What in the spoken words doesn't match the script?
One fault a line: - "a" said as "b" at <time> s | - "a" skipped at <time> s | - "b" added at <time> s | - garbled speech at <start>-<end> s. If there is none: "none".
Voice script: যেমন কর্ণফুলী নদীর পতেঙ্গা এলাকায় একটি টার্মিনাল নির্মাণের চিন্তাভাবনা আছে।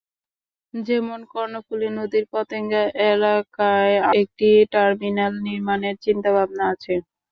none